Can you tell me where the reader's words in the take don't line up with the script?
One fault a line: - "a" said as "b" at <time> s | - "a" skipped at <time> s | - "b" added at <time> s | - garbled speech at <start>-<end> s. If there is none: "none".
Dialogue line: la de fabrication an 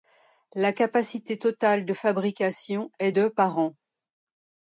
- "capacité totale" added at 0.7 s
- "est de par" added at 3.0 s